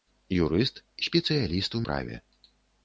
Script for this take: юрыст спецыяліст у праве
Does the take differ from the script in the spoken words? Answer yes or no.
no